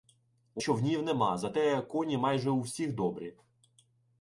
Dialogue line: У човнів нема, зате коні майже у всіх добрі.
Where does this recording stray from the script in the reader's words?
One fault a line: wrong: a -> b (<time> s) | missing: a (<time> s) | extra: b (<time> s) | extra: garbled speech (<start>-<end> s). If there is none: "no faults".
no faults